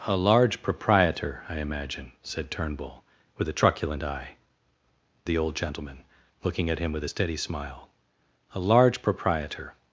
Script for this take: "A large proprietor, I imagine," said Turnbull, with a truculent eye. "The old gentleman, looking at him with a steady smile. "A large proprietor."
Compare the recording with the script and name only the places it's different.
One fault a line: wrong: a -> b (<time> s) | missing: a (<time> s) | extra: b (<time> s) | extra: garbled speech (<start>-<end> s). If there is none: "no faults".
no faults